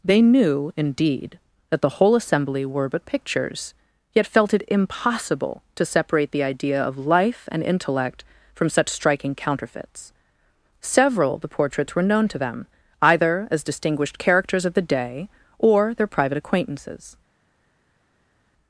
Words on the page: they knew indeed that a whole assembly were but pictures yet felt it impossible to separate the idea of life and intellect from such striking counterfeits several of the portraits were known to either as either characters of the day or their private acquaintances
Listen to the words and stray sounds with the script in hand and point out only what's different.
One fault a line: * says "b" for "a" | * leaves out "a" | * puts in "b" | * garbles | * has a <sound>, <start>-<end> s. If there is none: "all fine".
* says "the" for "a"
* puts in "them"
* says "distinguished" for "either"